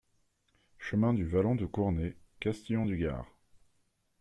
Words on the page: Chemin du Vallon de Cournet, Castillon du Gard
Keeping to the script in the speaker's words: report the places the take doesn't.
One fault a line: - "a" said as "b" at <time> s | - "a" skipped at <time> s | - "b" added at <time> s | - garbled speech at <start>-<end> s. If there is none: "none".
none